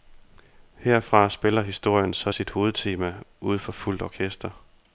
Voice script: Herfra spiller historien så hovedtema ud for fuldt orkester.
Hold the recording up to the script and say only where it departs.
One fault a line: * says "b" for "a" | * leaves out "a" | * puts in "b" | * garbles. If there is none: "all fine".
* puts in "sit"